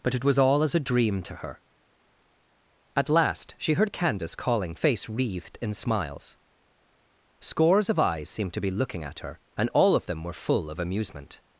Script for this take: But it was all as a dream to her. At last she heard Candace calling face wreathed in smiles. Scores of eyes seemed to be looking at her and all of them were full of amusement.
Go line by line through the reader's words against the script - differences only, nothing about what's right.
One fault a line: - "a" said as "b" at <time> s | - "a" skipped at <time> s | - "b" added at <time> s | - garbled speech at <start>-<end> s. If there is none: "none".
none